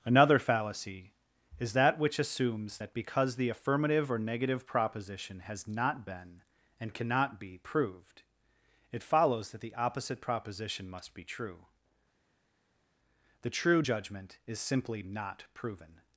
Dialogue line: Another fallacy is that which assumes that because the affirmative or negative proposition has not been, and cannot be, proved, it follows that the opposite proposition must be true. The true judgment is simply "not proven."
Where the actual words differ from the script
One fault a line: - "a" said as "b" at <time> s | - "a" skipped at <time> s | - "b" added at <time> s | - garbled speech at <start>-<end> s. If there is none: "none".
none